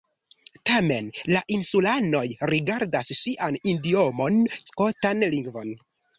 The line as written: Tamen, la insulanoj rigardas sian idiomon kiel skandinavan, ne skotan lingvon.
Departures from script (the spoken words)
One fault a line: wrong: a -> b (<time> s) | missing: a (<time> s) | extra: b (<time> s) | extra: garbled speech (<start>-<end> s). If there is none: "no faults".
missing: kiel skandinavan ne (4.4 s)